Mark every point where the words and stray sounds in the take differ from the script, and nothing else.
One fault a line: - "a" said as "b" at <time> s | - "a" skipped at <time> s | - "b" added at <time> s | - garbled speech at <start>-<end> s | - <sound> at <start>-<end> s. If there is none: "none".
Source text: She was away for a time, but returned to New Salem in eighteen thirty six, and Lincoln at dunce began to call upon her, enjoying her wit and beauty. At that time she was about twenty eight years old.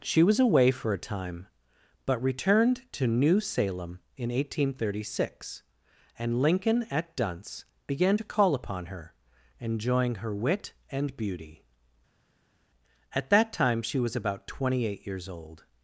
none